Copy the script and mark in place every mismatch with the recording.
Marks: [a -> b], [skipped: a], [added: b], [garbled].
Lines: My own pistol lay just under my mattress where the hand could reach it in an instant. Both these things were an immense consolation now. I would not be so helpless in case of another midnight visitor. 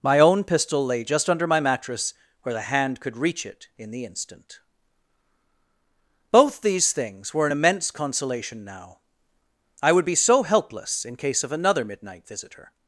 My own pistol lay just under my mattress where the hand could reach it in [an -> the] instant. Both these things were an immense consolation now. I would [skipped: not] be so helpless in case of another midnight visitor.